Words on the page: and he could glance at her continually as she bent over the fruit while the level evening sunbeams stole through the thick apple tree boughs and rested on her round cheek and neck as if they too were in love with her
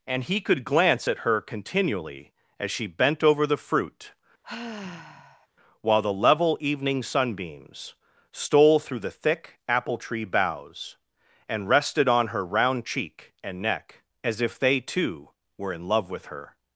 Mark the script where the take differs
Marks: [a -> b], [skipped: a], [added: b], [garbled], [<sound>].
and he could glance at her continually as she bent over the fruit [sigh] while the level evening sunbeams stole through the thick apple tree boughs and rested on her round cheek and neck as if they too were in love with her